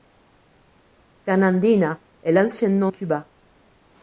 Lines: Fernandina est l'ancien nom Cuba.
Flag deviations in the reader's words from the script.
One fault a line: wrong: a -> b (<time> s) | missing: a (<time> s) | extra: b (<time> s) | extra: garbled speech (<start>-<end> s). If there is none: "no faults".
no faults